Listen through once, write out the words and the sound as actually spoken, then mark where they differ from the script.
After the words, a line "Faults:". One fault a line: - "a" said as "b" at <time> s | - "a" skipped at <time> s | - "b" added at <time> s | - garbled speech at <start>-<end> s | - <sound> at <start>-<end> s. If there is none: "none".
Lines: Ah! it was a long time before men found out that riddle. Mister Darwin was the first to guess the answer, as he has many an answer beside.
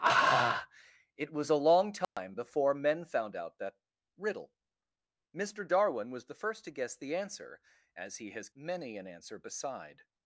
Ah! it was a long time before men found out that riddle. Mister Darwin was the first to guess the answer, as he has many an answer beside.
Faults:
- dropout at 2.0-2.2 s